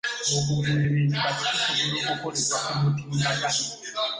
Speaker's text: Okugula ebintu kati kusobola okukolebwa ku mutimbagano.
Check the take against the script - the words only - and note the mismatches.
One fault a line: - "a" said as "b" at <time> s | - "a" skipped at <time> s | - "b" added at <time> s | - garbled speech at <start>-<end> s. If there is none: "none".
none